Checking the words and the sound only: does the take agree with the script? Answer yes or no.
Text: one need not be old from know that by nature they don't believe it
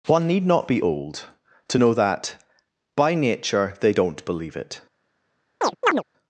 no